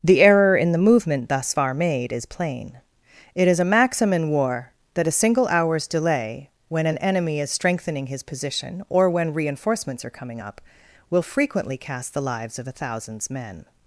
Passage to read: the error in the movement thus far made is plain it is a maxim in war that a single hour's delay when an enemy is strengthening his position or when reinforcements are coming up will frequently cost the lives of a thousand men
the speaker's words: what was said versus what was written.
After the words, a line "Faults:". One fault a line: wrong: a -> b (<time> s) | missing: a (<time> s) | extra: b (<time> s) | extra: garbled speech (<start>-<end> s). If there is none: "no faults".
the error in the movement thus far made is plain it is a maxim in war that a single hour's delay when an enemy is strengthening his position or when reinforcements are coming up will frequently cast the lives of a thousands men
Faults:
wrong: cost -> cast (11.8 s)
wrong: thousand -> thousands (12.7 s)